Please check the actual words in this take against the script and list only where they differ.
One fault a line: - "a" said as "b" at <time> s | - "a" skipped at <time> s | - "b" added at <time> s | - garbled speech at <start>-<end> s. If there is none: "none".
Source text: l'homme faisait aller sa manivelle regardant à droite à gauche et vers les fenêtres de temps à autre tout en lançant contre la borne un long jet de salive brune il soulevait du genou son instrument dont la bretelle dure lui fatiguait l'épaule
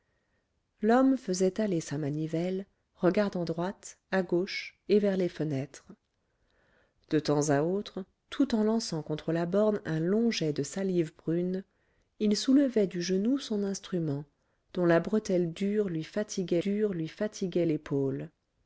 - "à" skipped at 3.5 s
- "dure lui fatiguait" added at 16.6 s